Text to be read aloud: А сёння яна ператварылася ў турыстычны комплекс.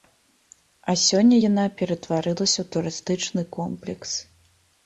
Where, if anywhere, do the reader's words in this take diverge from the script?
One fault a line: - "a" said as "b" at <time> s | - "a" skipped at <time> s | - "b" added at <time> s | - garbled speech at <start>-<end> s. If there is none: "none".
none